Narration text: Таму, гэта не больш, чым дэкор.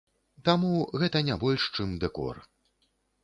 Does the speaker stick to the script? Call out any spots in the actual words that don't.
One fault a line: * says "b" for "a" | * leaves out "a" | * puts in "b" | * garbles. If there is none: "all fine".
all fine